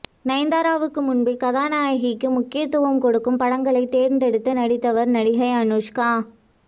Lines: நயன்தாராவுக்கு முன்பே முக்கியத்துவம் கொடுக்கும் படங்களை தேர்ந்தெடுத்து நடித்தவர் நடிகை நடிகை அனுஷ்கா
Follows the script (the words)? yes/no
no